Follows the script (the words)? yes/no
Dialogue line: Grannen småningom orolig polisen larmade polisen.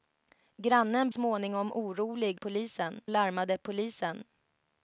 yes